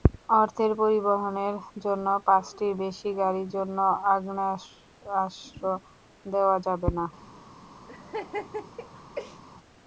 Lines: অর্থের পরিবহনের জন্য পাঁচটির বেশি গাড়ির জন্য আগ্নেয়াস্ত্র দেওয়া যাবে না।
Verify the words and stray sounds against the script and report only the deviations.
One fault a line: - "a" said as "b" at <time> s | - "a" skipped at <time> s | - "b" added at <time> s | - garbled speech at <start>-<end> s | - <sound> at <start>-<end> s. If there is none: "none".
- laugh at 7.9-9.4 s